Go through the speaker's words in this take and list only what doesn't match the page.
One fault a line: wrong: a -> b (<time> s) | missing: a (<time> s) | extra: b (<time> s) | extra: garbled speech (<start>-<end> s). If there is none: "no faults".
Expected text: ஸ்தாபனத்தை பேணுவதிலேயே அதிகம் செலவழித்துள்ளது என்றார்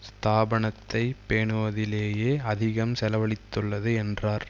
no faults